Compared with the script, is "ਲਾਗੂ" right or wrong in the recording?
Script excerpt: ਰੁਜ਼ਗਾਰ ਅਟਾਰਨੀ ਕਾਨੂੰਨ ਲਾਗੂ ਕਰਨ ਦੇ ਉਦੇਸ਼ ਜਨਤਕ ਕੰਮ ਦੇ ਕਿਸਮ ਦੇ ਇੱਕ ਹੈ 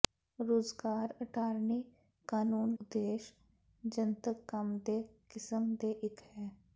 wrong